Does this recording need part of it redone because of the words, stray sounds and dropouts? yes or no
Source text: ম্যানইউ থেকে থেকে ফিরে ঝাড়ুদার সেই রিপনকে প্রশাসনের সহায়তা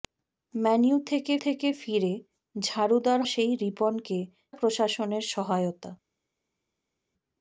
no